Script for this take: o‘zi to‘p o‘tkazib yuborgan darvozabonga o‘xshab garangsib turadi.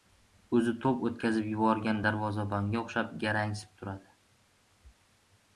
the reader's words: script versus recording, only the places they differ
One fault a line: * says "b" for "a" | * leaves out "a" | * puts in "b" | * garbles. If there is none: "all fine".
all fine